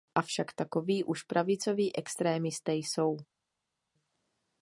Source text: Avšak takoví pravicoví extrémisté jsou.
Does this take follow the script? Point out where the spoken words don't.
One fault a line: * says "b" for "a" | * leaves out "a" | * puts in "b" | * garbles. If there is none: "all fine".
* puts in "už"